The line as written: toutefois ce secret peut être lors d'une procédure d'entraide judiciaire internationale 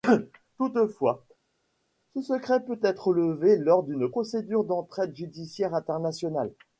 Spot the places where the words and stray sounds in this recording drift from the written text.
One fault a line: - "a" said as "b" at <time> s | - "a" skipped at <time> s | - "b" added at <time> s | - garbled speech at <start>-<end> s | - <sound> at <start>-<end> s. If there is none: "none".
- "levé" added at 3.1 s